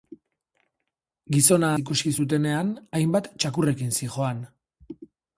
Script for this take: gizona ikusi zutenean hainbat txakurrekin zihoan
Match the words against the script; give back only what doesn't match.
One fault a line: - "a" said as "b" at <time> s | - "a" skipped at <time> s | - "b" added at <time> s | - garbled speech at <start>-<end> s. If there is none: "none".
none